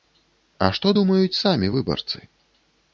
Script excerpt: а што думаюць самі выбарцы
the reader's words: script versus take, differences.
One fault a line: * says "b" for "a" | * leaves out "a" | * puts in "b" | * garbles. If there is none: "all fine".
all fine